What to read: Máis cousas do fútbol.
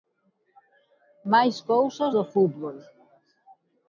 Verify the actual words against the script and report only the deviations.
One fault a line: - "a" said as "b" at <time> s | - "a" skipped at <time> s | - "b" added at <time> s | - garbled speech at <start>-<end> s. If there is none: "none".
none